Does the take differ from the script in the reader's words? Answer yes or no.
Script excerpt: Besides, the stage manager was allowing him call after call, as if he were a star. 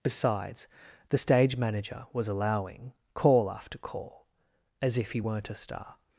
yes